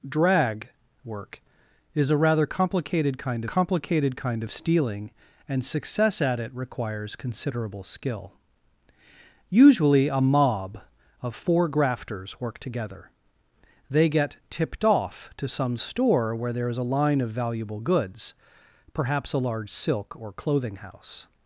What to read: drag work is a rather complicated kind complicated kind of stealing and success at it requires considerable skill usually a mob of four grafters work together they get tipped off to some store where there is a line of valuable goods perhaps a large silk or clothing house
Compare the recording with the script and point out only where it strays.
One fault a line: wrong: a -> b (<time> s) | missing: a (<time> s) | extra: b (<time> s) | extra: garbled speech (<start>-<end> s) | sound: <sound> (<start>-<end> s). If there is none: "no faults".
no faults